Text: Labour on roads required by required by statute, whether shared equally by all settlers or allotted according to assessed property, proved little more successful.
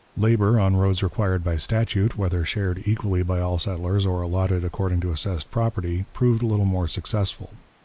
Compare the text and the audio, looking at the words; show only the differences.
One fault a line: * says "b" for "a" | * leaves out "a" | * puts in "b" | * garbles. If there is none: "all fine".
* leaves out "required by"